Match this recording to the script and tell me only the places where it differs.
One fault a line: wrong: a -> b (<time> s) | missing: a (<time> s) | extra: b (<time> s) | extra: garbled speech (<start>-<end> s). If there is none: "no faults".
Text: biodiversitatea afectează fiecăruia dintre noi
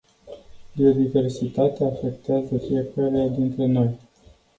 no faults